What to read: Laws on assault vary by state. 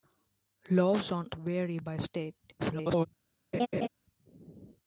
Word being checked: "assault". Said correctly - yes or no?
no